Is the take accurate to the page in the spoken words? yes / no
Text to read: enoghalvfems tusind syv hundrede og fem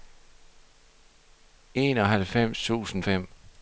no